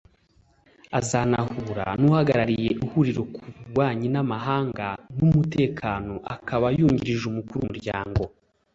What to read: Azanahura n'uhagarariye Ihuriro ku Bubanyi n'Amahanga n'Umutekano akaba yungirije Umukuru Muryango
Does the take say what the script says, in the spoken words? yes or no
yes